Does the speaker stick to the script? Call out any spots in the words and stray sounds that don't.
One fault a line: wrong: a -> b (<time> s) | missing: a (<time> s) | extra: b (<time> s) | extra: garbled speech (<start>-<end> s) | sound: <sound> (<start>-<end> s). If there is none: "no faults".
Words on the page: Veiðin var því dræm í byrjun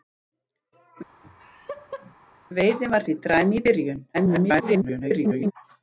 sound: laugh (1.2-2.1 s)
extra: garbled speech (4.1-5.5 s)